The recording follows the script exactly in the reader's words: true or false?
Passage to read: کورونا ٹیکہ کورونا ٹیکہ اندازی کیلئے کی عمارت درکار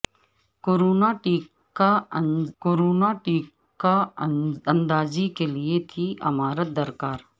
true